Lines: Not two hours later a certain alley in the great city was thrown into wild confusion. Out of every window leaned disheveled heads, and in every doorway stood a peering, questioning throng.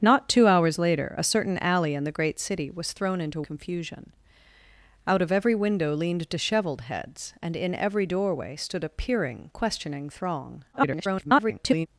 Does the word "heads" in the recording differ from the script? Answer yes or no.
no